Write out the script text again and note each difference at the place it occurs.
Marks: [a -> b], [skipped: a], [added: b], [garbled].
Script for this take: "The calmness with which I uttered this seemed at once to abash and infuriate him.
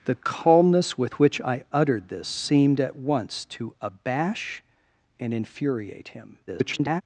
"The calmness with which I uttered this seemed at once to abash and infuriate him. [garbled]